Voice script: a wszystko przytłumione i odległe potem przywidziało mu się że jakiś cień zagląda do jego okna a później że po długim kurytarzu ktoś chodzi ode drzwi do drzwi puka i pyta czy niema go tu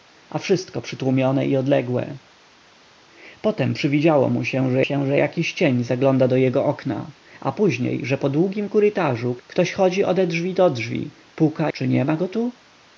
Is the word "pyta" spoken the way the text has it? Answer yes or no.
no